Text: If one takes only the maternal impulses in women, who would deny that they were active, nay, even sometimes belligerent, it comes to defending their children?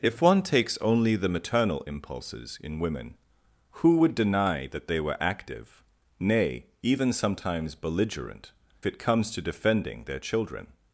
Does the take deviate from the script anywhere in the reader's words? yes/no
no